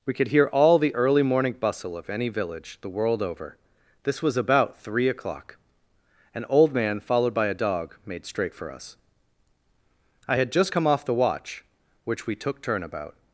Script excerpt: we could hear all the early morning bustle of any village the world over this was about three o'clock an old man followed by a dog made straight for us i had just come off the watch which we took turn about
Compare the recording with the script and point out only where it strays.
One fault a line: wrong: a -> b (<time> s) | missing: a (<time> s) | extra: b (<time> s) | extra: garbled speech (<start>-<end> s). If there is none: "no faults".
no faults